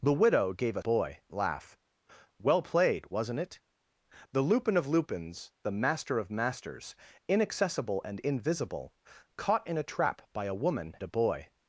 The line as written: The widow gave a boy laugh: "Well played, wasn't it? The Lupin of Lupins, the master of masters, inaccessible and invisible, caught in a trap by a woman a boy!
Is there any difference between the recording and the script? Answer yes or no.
no